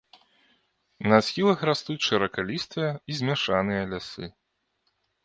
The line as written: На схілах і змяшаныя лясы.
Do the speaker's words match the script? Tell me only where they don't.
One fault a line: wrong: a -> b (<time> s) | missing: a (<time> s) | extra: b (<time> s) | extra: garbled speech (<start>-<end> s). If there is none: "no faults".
extra: растуць шыракалістыя (1.7 s)